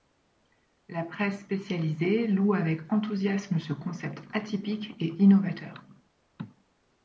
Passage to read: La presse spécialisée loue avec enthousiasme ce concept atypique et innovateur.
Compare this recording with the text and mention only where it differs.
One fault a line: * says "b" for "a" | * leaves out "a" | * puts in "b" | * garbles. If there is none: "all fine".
all fine